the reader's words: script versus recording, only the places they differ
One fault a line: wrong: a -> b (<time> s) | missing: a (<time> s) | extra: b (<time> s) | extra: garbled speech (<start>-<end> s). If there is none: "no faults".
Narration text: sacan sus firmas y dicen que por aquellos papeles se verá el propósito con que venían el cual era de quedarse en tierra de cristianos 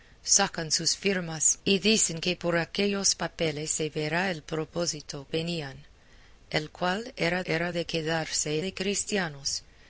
missing: con que (5.3 s)
extra: era (7.5 s)
missing: en tierra (8.6 s)